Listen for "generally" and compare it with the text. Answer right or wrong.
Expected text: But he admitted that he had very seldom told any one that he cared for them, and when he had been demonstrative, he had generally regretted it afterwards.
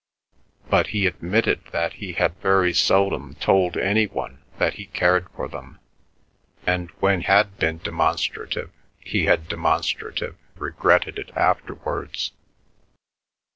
wrong